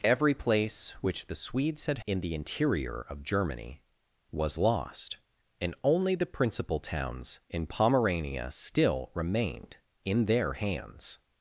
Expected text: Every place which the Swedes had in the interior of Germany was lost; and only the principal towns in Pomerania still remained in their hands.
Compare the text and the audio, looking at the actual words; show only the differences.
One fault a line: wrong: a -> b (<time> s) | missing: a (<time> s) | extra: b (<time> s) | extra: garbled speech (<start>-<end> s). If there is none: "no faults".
no faults